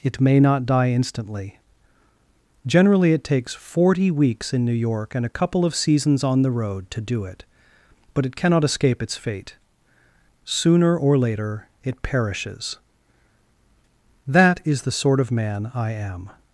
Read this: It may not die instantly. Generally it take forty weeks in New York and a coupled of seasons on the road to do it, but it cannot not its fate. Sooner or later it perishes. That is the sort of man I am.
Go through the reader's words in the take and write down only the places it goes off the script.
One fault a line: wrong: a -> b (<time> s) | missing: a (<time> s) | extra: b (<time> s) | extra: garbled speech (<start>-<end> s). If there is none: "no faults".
wrong: take -> takes (3.2 s)
wrong: coupled -> couple (5.3 s)
wrong: not -> escape (8.6 s)